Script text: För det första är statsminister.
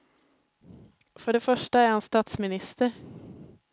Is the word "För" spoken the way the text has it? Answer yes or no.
yes